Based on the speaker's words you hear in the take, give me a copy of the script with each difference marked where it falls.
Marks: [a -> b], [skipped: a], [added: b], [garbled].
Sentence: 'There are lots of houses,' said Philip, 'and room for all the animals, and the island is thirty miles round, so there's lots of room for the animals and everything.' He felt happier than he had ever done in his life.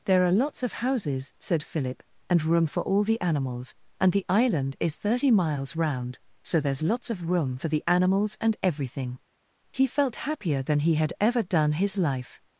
'There are lots of houses,' said Philip, 'and room for all the animals, and the island is thirty miles round, so there's lots of room for the animals and everything.' He felt happier than he had ever done [skipped: in] his life.